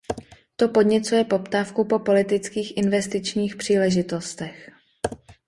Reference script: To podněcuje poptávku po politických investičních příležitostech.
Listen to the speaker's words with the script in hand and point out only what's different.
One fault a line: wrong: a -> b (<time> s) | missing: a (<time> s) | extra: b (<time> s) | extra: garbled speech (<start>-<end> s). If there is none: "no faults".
no faults